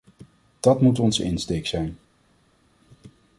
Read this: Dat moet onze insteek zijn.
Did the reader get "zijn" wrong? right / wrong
right